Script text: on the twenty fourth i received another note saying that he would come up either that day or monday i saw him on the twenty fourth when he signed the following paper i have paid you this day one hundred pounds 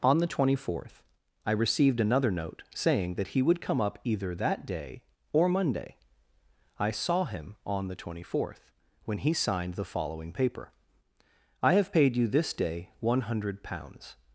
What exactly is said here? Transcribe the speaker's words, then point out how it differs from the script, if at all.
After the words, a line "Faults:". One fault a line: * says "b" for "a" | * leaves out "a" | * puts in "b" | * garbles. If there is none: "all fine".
on the twenty fourth i received another note saying that he would come up either that day or monday i saw him on the twenty fourth when he signed the following paper i have paid you this day one hundred pounds
Faults:
all fine